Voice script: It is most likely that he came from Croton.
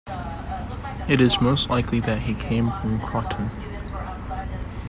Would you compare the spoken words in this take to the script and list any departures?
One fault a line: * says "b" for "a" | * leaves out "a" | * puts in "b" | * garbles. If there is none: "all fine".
all fine